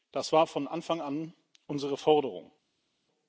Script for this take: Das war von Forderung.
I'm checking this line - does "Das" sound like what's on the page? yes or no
yes